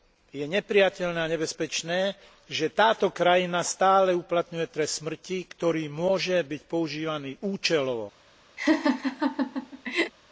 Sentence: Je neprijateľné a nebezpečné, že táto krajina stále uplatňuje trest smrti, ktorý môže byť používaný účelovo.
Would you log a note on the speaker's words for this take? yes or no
no